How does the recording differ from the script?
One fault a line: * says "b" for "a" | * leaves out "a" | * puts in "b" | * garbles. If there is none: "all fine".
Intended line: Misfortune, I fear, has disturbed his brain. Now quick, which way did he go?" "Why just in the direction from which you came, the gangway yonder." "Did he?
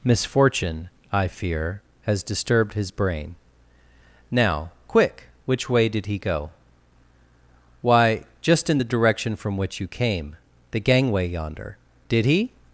all fine